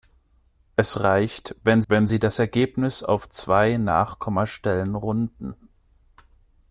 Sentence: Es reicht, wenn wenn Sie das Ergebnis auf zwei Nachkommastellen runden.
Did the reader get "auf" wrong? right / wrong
right